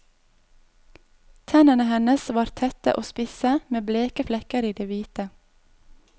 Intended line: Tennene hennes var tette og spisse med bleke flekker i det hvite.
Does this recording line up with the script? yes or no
yes